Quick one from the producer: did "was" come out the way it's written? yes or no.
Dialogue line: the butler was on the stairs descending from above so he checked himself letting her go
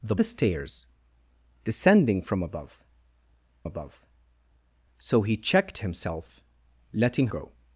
no